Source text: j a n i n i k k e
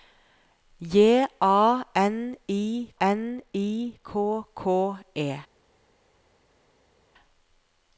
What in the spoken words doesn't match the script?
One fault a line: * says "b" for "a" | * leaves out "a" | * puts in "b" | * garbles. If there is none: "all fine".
all fine